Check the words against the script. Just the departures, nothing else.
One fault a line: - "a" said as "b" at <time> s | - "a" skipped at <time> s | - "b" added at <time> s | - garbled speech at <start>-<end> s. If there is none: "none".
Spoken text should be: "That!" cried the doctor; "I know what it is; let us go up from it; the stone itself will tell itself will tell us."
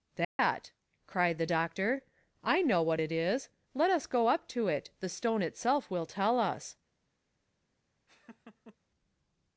- "from" said as "to" at 4.5 s
- "itself will tell" skipped at 6.4 s